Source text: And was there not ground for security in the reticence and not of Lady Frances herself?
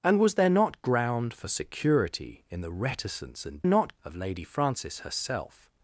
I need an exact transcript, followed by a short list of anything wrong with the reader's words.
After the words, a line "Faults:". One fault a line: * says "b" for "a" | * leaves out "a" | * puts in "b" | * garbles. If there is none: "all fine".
And was there not ground for security in the reticence and not of Lady Frances herself?
Faults:
all fine